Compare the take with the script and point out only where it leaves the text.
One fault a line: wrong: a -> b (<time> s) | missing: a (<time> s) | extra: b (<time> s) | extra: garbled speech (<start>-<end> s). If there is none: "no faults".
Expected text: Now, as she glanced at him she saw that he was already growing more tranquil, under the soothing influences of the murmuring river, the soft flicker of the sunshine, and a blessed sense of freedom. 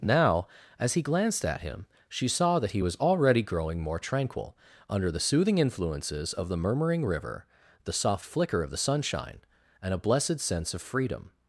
wrong: she -> he (0.9 s)